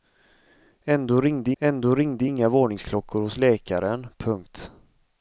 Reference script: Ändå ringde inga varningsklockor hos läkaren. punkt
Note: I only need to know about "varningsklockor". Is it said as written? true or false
true